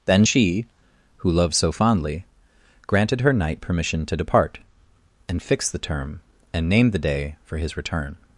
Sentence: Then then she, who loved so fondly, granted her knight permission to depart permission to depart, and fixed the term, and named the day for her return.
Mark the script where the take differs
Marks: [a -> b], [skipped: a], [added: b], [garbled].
Then [skipped: then] she, who loved so fondly, granted her knight permission to depart [skipped: permission to depart,] and fixed the term, and named the day for [her -> his] return.